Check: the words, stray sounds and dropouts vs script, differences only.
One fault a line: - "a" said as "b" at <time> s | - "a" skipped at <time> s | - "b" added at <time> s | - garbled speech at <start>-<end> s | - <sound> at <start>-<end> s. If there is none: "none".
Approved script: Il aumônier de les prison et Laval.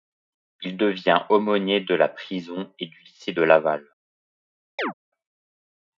- "devient" added at 0.8 s
- "les" said as "la" at 1.9 s
- "du lycée de" added at 2.9 s
- chirp at 4.8-4.9 s